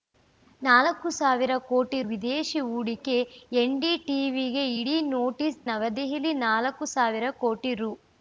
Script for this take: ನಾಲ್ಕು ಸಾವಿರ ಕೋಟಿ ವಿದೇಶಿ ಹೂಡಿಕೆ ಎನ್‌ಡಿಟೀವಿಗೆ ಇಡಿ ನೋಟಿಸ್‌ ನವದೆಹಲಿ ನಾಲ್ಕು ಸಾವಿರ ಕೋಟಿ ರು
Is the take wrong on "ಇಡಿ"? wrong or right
right